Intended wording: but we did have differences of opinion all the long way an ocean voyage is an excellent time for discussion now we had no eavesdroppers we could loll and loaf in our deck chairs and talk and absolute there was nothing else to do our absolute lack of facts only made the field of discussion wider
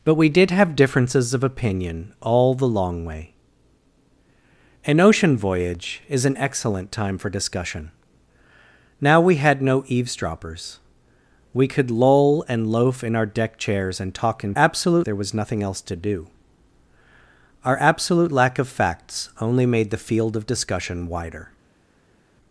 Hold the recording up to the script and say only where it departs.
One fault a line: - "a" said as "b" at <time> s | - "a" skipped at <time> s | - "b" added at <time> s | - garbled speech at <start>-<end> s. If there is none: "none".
none